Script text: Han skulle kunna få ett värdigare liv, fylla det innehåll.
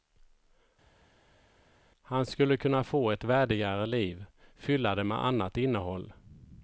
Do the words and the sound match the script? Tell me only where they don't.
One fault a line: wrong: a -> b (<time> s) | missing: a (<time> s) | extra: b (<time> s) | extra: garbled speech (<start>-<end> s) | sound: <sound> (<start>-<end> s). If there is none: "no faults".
extra: med annat (5.0 s)